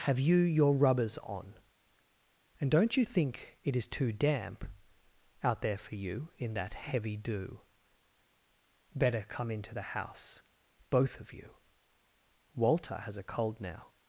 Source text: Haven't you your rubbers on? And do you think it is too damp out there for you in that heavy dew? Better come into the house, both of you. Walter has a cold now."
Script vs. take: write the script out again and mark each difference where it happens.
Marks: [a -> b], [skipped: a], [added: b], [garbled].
[Haven't -> Have] you your rubbers on? And [do -> don't] you think it is too damp out there for you in that heavy dew? Better come into the house, both of you. Walter has a cold now."